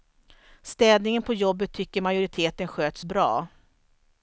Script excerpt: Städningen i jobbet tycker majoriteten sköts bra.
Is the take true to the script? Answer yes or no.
no